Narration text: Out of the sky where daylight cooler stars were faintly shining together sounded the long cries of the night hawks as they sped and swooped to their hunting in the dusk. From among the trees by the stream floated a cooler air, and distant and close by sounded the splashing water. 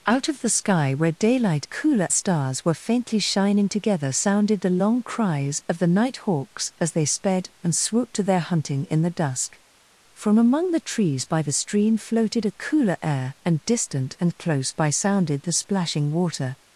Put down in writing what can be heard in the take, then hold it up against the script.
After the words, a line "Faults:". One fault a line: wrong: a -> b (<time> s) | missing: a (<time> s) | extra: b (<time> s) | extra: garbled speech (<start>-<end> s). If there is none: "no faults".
Out of the sky where daylight cooler stars were faintly shining together sounded the long cries of the night hawks as they sped and swooped to their hunting in the dusk. From among the trees by the stream floated a cooler air, and distant and close by sounded the splashing water.
Faults:
no faults